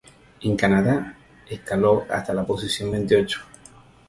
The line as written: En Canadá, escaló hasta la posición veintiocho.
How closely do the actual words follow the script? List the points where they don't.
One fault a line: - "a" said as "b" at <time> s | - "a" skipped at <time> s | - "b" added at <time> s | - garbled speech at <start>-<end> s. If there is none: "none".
none